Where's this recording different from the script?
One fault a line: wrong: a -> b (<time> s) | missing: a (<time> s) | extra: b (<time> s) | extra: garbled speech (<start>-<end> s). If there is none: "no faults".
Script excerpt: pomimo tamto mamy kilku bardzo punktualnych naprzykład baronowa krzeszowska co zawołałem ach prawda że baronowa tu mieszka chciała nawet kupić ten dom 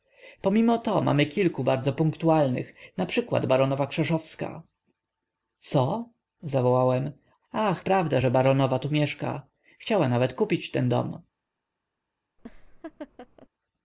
wrong: tamto -> to (0.8 s)